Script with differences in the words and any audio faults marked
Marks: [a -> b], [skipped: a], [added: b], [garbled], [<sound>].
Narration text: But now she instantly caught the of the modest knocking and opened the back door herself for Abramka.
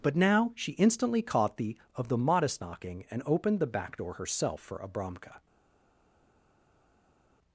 But now she instantly caught the of the modest knocking and opened the back door herself for Abramka.